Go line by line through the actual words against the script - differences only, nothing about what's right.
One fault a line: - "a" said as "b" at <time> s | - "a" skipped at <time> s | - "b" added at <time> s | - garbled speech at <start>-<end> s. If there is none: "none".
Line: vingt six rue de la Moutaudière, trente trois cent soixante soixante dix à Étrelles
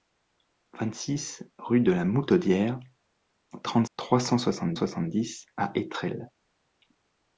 none